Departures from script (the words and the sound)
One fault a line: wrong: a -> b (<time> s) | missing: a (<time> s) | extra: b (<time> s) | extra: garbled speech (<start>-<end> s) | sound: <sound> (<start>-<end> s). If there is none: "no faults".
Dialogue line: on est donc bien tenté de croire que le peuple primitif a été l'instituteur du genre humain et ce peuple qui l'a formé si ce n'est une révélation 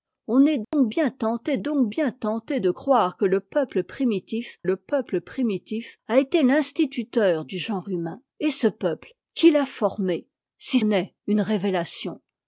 sound: dropout (0.6-0.7 s)
extra: donc bien tenté (1.6 s)
extra: le peuple primitif (4.6 s)
missing: ce (10.8 s)